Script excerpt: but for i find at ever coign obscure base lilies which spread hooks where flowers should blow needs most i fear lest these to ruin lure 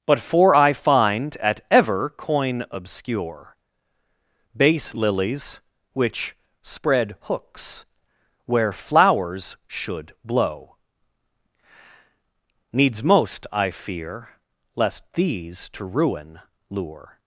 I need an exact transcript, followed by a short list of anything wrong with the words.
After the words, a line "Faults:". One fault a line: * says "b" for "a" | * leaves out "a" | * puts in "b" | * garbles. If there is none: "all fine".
but for i find at ever coign obscure base lilies which spread hooks where flowers should blow needs most i fear lest these to ruin lure
Faults:
all fine